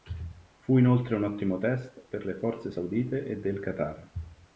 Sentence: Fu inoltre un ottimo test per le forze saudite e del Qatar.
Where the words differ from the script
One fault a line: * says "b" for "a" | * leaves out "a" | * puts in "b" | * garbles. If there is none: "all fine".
all fine